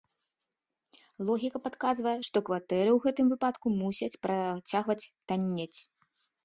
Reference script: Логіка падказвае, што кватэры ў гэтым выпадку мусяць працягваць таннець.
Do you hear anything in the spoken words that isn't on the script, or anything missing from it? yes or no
no